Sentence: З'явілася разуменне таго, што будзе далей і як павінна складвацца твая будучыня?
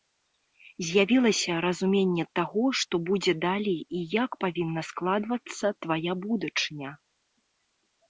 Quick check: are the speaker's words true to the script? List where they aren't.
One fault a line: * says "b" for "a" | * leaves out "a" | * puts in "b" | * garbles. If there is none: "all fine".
all fine